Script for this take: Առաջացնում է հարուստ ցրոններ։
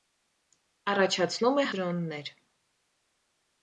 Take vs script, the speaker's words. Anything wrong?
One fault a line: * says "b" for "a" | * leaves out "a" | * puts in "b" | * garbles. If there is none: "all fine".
* leaves out "հարուստ"